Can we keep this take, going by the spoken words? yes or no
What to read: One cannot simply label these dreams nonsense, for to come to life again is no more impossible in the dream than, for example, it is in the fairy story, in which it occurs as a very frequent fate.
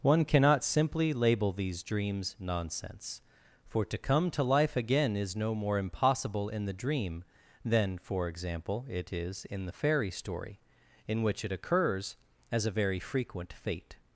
yes